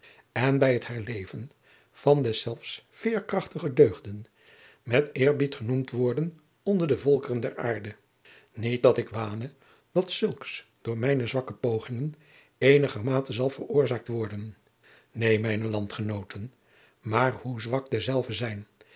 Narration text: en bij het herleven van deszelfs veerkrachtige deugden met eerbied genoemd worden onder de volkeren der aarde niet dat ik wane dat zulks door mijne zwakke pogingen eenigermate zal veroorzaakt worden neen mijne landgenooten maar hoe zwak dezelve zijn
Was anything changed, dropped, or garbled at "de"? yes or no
no